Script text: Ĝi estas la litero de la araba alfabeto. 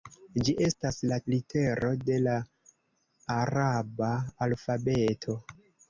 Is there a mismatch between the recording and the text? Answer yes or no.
no